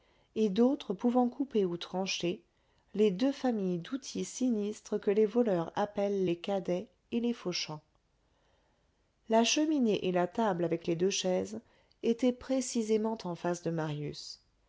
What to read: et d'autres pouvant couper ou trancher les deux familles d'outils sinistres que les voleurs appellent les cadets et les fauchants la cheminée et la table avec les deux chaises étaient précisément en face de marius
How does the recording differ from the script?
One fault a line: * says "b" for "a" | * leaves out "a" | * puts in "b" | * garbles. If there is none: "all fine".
all fine